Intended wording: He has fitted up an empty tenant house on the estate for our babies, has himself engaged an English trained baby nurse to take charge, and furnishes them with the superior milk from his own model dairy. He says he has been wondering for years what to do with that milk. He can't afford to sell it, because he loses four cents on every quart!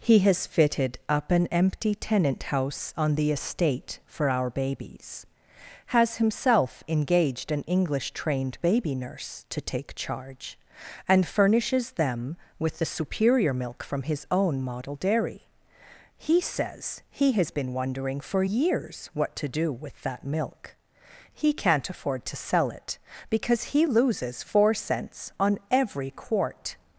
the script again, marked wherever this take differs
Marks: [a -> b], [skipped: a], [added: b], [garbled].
He has fitted up an empty tenant house on the estate for our babies, has himself engaged an English trained baby nurse to take charge, and furnishes them with the superior milk from his own model dairy. He says he has been wondering for years what to do with that milk. He can't afford to sell it, because he loses four cents on every quart!